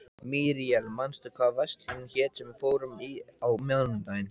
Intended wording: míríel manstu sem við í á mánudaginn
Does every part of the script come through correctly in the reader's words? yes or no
no